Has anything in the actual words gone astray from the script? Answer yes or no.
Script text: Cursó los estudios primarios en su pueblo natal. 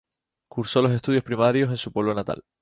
no